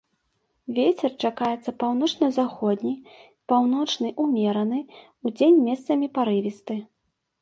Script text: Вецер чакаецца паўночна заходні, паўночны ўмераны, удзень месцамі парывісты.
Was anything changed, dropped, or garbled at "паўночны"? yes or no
no